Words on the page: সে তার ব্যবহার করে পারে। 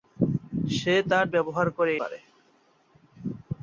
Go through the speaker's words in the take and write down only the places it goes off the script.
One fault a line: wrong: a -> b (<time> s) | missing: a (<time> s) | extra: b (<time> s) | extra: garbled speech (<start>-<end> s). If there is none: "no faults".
no faults